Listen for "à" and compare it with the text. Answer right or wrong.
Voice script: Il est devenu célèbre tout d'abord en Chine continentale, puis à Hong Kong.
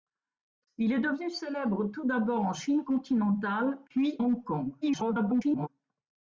wrong